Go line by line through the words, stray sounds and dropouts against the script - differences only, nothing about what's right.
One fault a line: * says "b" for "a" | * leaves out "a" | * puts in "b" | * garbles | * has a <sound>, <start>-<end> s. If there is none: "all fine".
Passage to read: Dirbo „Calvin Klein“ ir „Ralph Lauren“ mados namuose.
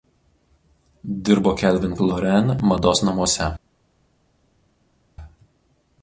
* leaves out "Klein ir Ralph"